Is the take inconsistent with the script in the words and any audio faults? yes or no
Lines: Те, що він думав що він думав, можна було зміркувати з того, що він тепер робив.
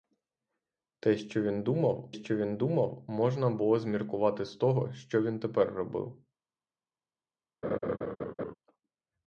yes